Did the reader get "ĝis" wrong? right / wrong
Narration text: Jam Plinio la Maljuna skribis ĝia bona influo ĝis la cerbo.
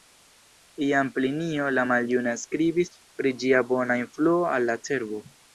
wrong